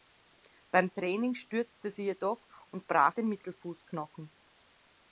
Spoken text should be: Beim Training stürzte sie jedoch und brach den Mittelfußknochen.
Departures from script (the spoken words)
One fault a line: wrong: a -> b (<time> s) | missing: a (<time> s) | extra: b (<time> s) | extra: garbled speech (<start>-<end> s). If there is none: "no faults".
no faults